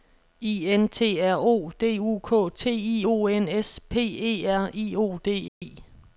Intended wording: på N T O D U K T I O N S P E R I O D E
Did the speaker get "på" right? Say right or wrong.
wrong